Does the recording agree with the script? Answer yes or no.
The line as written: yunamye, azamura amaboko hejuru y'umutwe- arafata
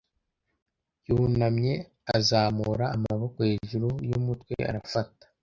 yes